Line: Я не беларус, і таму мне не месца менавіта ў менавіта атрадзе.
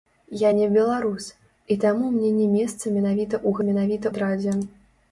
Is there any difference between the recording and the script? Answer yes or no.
no